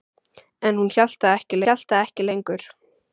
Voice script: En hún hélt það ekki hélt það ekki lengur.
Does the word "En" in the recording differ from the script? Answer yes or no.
no